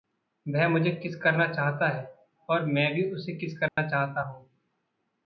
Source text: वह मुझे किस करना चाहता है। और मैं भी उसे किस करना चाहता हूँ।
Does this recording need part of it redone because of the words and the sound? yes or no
yes